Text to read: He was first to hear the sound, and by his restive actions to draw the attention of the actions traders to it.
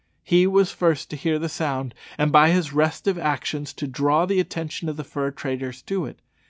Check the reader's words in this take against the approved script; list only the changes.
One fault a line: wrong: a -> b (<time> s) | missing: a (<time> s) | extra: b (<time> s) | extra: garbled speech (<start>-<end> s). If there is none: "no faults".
wrong: actions -> fur (5.0 s)